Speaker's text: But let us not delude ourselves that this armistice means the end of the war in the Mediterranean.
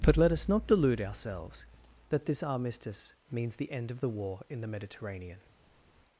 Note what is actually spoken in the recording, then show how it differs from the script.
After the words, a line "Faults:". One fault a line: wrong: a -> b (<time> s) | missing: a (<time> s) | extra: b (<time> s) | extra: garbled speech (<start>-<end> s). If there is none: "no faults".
But let us not delude ourselves that this armistice means the end of the war in the Mediterranean.
Faults:
no faults